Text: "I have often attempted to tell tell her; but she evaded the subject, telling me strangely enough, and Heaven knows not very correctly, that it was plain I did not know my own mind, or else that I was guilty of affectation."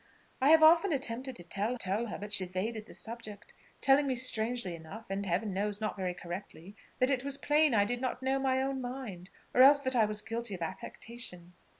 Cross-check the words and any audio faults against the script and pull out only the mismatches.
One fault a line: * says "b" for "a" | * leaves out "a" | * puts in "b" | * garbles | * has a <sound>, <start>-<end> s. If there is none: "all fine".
all fine